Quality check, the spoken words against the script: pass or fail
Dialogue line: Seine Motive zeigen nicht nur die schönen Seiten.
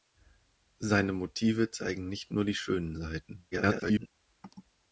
fail